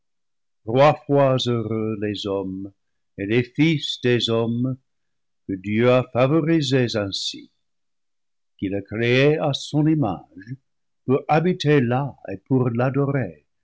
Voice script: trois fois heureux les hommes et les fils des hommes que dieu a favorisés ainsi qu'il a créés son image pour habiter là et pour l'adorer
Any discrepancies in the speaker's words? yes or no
yes